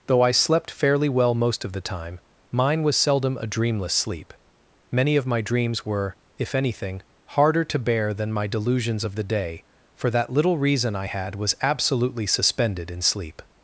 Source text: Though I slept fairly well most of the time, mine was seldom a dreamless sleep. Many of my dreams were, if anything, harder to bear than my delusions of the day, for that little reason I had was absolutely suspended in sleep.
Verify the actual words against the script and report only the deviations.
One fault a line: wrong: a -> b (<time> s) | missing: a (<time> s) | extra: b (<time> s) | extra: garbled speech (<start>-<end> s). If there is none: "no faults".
no faults